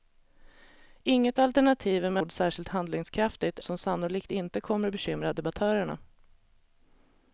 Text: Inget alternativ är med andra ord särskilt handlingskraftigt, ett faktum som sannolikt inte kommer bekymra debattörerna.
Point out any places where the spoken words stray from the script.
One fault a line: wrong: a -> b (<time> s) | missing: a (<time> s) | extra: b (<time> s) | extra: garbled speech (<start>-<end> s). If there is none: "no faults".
missing: andra (2.2 s)
missing: ett faktum (3.6 s)